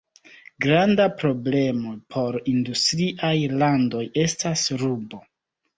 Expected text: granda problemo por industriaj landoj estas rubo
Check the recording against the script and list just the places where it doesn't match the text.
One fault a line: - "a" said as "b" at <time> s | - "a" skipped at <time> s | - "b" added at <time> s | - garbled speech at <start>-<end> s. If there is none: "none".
none